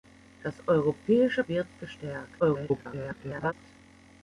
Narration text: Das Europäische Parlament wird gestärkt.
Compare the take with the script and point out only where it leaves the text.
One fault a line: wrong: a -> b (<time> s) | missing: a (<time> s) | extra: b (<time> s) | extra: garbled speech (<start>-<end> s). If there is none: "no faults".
missing: Parlament (1.4 s)
extra: garbled speech (2.4-3.5 s)